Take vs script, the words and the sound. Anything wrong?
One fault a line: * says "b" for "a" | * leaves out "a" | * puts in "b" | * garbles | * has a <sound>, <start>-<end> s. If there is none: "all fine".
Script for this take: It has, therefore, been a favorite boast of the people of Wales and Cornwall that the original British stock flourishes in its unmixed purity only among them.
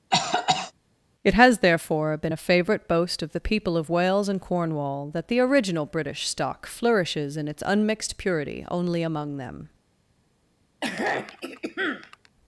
* has a cough, 0.1-0.7 s
* has a throat clearing, 10.8-12.3 s